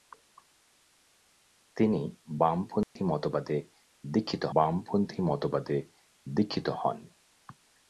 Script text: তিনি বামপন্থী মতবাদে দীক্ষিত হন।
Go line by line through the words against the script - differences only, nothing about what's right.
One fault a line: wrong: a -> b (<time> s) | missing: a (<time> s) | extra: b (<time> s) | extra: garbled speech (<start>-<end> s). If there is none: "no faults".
extra: বামপন্থী মতবাদে দীক্ষিত (4.5 s)